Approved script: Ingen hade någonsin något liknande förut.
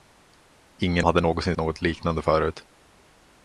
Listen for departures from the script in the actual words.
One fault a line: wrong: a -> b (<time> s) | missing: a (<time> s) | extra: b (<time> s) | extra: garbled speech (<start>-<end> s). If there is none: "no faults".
no faults